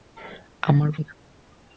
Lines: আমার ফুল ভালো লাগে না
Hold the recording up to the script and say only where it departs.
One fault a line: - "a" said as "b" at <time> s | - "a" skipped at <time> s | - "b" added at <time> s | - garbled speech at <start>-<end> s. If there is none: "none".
- "ফুল ভালো লাগে" skipped at 0.9 s